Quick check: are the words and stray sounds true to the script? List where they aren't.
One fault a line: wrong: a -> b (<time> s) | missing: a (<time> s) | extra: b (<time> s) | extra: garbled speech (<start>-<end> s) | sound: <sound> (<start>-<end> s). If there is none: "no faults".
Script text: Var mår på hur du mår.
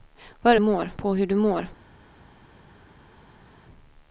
no faults